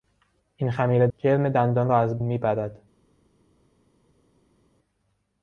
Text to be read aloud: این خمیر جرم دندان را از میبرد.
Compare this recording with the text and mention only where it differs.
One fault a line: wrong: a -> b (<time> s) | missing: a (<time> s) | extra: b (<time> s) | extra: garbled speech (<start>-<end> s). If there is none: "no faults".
no faults